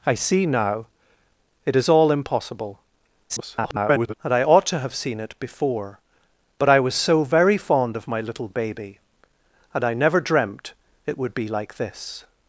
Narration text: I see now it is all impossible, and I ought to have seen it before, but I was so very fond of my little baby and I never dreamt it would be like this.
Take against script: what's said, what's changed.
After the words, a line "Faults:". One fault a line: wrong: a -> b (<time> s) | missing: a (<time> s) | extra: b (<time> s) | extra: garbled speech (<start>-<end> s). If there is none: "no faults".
I see now it is all impossible, [garbled] and I ought to have seen it before, but I was so very fond of my little baby and I never dreamt it would be like this.
Faults:
extra: garbled speech (3.3-4.1 s)